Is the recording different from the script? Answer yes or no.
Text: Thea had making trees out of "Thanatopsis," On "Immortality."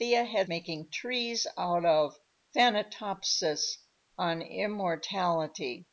no